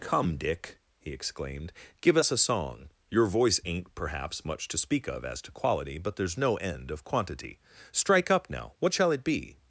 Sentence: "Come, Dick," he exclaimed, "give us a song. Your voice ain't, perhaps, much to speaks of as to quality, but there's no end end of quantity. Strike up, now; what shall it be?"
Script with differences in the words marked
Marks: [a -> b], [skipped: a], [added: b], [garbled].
"Come, Dick," he exclaimed, "give us a song. Your voice ain't, perhaps, much to [speaks -> speak] of as to quality, but there's no end [skipped: end] of quantity. Strike up, now; what shall it be?"